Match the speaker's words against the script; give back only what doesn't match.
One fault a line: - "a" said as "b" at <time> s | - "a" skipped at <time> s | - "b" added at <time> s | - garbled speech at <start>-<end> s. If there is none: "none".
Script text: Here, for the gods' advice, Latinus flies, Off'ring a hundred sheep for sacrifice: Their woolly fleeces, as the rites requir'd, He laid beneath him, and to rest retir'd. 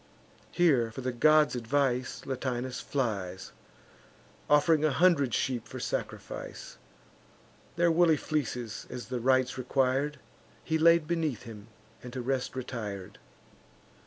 none